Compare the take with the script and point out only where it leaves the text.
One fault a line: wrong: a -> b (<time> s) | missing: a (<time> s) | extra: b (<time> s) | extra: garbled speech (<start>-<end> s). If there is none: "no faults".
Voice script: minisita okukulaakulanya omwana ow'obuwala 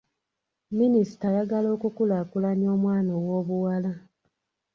extra: ayagala (1.3 s)